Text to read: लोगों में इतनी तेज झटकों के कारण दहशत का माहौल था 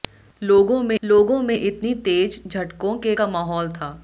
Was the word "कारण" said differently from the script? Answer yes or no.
yes